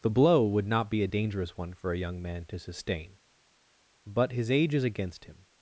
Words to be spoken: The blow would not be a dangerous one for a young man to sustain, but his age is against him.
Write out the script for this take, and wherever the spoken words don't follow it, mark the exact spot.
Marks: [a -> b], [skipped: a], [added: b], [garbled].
The blow would not be a dangerous one for a young man to sustain, but his age is against him.